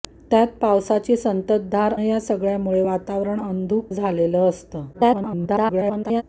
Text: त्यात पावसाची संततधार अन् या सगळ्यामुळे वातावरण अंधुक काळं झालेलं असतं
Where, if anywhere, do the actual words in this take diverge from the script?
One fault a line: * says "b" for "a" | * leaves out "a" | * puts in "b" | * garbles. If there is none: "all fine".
* leaves out "अन्"
* leaves out "काळं"
* garbles